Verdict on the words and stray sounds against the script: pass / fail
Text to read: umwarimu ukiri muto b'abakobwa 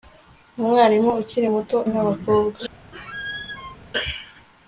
fail